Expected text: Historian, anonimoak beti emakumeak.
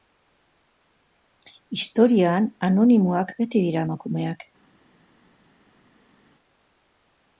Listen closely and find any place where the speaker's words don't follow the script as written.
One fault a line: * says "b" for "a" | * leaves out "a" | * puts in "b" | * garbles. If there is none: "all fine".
* puts in "dira"